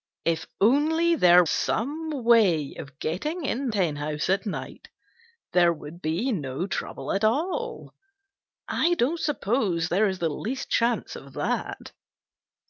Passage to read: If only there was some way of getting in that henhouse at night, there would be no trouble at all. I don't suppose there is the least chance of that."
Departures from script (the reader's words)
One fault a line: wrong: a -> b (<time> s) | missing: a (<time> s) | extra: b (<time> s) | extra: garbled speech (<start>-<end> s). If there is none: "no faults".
missing: was (1.4 s)
missing: that (3.7 s)